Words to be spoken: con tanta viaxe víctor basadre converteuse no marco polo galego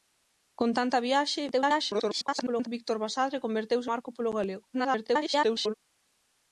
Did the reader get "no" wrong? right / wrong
wrong